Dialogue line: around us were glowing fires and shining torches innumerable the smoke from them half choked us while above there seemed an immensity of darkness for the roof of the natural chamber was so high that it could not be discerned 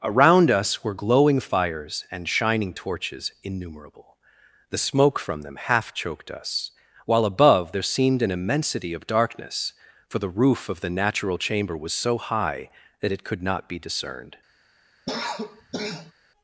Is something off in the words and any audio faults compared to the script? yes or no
yes